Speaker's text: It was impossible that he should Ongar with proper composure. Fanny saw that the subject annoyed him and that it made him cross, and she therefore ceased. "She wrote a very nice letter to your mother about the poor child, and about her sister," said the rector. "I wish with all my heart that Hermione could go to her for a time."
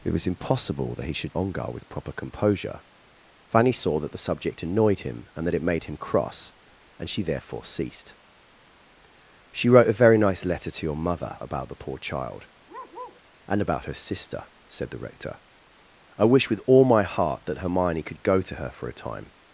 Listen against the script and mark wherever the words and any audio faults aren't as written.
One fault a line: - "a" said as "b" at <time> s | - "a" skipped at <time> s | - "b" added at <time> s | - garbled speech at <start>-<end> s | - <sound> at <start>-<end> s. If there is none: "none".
- bark at 12.7-13.2 s